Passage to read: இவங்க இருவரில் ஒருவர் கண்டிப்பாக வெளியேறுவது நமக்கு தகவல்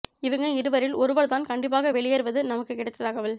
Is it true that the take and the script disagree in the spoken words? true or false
true